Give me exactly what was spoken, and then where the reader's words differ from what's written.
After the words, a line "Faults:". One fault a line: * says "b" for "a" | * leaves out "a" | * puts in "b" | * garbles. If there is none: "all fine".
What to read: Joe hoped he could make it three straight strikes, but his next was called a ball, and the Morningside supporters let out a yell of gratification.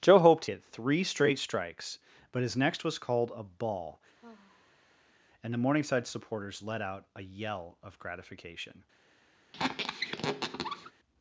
Joe hoped it three straight strikes, but his next was called a ball, and the Morningside supporters let out a yell of gratification.
Faults:
* leaves out "he could make"